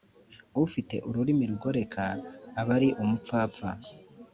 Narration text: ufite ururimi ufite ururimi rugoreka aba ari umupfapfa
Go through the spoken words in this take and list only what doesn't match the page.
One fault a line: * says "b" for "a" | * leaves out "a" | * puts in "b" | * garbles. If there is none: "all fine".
* leaves out "ufite ururimi"